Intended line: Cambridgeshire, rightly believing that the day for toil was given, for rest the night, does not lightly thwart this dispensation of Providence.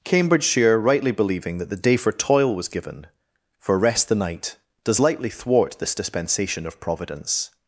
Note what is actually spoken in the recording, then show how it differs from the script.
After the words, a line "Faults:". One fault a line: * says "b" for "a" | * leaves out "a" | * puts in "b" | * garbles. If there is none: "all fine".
Cambridgeshire, rightly believing that the day for toil was given, for rest the night, does lightly thwart this dispensation of Providence.
Faults:
* leaves out "not"